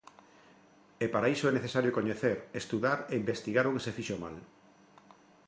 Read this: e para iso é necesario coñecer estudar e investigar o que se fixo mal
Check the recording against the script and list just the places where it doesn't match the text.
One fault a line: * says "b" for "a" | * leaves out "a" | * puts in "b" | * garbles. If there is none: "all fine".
all fine